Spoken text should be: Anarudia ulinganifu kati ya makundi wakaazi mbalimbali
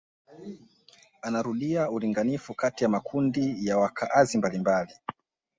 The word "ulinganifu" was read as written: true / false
true